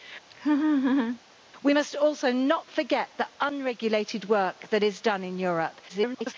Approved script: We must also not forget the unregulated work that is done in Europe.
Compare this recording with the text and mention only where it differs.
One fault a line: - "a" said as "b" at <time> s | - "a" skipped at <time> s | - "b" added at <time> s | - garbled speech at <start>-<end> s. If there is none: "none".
- garbled speech at 5.9-6.3 s